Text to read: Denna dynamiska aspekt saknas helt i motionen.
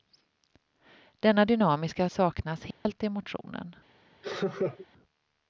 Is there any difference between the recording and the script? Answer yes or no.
yes